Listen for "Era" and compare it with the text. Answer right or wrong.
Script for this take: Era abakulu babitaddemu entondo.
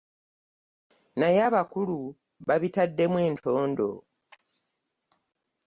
wrong